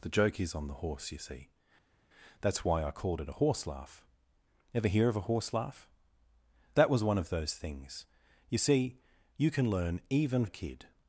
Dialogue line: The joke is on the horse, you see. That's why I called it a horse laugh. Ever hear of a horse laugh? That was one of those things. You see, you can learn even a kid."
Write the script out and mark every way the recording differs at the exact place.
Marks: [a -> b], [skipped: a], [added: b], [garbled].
The joke is on the horse, you see. That's why I called it a horse laugh. Ever hear of a horse laugh? That was one of those things. You see, you can learn even a kid."